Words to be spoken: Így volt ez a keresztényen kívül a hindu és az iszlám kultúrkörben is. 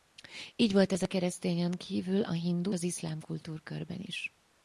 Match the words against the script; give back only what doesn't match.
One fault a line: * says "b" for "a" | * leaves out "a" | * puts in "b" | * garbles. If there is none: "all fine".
* leaves out "és"